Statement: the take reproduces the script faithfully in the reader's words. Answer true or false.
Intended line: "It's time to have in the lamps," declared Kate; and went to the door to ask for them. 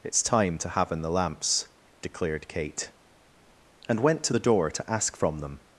false